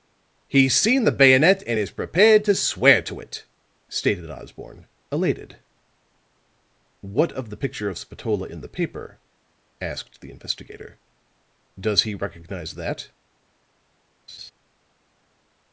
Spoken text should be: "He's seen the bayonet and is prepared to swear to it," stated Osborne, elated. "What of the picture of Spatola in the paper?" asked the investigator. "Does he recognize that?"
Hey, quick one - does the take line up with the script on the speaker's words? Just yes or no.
yes